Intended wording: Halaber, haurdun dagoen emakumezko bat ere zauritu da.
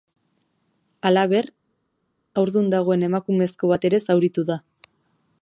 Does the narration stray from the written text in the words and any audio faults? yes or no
no